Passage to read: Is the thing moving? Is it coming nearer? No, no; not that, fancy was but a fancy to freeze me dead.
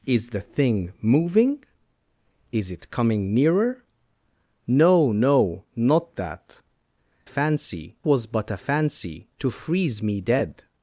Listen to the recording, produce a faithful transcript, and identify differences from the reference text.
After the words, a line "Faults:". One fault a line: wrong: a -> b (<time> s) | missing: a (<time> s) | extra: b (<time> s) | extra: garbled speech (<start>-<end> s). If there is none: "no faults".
Is the thing moving? Is it coming nearer? No, no; not that, fancy was but a fancy to freeze me dead.
Faults:
no faults